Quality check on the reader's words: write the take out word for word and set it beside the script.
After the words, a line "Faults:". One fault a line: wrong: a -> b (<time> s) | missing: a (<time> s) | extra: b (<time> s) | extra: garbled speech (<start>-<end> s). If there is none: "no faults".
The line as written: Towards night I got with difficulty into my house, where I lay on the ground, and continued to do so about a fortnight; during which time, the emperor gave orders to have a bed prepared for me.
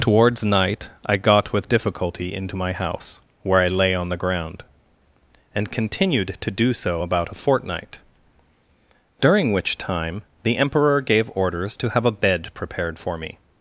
Towards night I got with difficulty into my house, where I lay on the ground, and continued to do so about a fortnight; during which time, the emperor gave orders to have a bed prepared for me.
Faults:
no faults